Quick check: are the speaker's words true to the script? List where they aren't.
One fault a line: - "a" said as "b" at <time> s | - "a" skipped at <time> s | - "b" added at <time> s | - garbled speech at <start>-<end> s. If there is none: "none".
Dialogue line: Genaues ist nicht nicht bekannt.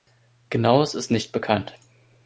- "nicht" skipped at 1.3 s